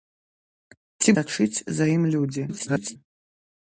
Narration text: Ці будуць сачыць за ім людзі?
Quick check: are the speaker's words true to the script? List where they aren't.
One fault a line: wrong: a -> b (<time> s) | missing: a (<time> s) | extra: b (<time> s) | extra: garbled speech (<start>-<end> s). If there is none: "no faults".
missing: будуць (1.1 s)
extra: garbled speech (2.5-3.0 s)